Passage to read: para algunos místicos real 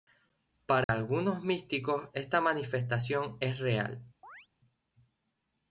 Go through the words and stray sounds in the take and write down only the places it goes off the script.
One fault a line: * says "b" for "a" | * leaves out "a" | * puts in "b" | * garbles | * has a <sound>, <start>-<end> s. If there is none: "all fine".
* has a dropout, 0.8-0.9 s
* puts in "esta manifestación es"
* has a chirp, 4.2-4.5 s